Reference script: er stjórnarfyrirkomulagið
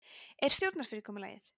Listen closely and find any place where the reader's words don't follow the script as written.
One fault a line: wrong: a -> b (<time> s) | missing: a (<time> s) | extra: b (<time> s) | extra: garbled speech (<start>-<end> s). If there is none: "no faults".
no faults